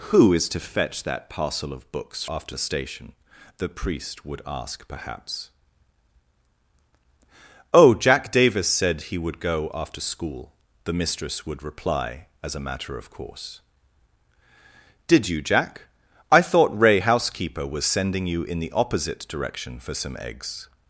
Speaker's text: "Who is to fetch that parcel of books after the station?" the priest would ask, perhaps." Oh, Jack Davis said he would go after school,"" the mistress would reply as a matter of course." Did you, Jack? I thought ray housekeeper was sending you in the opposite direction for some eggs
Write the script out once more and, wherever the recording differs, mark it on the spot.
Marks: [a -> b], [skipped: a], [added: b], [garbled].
"Who is to fetch that parcel of books after the station?" the priest would ask, perhaps." Oh, Jack Davis said he would go after school,"" the mistress would reply as a matter of course." Did you, Jack? I thought ray housekeeper was sending you in the opposite direction for some eggs